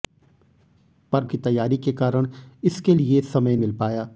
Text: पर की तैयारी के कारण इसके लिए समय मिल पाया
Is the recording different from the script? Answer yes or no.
no